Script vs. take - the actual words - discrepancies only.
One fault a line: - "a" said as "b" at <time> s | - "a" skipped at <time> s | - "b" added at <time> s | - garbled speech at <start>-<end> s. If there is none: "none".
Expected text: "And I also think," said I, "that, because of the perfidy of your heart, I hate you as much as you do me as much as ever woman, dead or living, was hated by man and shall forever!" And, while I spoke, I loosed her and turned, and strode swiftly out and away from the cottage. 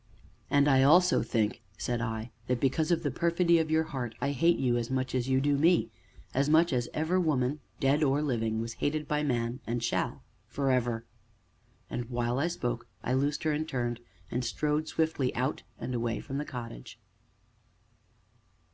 none